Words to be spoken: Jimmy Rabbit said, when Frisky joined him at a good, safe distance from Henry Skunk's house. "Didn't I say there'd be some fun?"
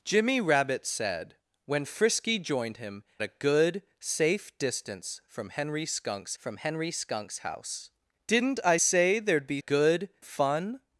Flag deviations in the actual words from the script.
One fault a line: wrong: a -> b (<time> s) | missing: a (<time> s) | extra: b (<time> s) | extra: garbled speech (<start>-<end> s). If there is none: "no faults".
missing: at (3.0 s)
extra: from Henry Skunk's (6.4 s)
wrong: some -> good (9.6 s)